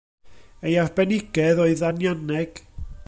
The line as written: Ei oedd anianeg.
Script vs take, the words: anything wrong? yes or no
yes